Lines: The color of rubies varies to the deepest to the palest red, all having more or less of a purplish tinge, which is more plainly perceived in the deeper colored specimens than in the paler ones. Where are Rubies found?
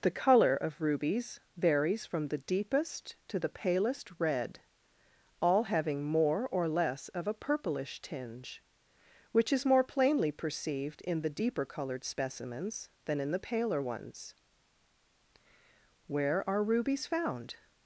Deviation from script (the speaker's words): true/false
true